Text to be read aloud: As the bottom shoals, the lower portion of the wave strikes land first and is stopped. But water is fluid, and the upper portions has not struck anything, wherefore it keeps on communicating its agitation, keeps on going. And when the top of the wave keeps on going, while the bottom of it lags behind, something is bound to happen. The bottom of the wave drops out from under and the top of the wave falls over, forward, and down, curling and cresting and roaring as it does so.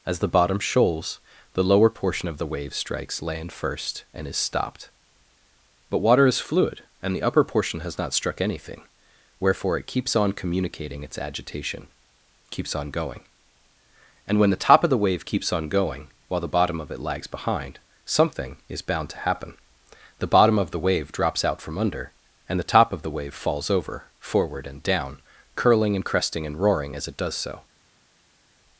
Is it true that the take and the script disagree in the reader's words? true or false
true